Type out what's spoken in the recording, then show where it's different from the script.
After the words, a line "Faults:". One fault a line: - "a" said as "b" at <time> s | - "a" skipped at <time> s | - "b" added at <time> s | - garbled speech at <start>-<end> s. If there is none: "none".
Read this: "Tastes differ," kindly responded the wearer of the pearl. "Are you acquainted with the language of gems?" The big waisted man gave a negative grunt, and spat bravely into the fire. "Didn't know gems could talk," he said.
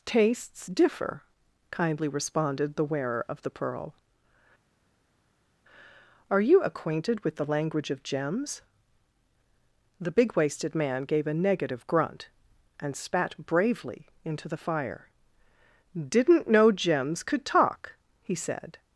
"Tastes differ," kindly responded the wearer of the pearl. "Are you acquainted with the language of gems?" The big waisted man gave a negative grunt, and spat bravely into the fire. "Didn't know gems could talk," he said.
Faults:
none